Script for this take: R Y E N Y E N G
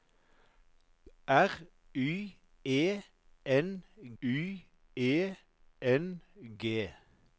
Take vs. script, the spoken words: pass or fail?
pass